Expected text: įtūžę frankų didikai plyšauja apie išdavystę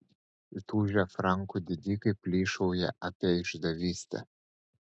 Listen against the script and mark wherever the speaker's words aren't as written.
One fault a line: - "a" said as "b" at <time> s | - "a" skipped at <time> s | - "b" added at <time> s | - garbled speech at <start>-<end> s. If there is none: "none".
none